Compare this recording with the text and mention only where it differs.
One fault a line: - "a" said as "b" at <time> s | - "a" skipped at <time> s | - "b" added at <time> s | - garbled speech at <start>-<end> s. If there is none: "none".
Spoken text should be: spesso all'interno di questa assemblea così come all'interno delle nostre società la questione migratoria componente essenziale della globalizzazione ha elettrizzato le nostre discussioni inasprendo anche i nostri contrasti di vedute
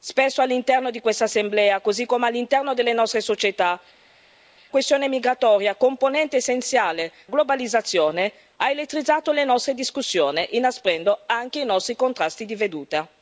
- "la" skipped at 3.8 s
- "della" skipped at 7.1 s